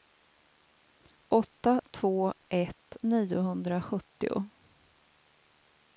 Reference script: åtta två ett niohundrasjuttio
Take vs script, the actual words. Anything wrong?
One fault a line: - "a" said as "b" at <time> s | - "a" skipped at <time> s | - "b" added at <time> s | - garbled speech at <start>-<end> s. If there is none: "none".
none